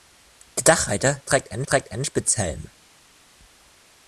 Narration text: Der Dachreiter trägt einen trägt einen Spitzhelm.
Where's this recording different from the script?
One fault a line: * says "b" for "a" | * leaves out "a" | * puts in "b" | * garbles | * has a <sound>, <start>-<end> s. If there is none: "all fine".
all fine